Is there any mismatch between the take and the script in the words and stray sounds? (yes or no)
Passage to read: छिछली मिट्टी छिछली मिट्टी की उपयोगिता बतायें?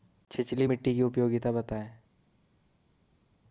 yes